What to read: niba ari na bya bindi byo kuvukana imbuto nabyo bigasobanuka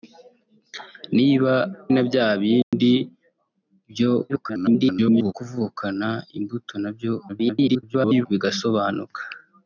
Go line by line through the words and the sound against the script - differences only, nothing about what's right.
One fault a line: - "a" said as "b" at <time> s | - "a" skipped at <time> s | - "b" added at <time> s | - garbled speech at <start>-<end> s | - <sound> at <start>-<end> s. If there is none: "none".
- "ari" skipped at 1.5 s
- dropout at 2.6-2.7 s
- garbled speech at 4.3-5.3 s
- garbled speech at 7.3-8.3 s